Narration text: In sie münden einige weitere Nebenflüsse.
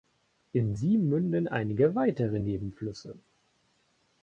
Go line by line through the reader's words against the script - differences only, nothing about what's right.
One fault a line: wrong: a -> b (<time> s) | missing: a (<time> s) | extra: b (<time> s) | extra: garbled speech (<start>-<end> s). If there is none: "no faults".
no faults